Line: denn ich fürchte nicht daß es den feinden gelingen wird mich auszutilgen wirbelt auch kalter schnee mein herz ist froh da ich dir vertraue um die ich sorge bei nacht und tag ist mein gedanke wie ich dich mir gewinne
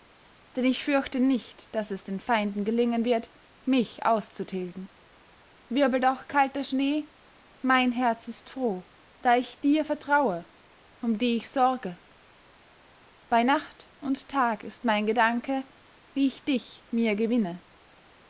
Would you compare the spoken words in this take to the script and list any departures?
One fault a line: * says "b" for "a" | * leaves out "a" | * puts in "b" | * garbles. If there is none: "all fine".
all fine